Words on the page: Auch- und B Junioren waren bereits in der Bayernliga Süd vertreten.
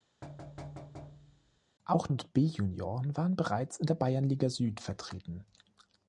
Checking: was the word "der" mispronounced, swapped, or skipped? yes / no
no